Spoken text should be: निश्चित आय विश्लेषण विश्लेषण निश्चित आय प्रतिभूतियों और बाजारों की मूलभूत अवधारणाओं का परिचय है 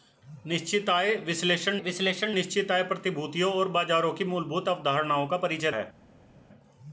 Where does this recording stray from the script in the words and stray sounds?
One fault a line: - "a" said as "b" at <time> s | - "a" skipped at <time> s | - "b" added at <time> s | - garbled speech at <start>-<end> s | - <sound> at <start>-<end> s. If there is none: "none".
none